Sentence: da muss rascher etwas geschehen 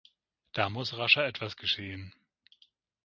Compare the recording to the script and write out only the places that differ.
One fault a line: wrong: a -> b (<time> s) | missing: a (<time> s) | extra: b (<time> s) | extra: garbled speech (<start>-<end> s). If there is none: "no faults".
no faults